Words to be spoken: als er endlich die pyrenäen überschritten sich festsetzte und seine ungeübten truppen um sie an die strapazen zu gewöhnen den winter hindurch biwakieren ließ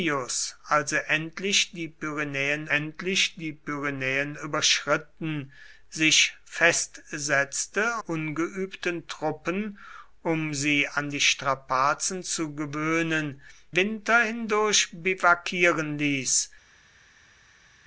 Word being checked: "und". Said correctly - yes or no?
no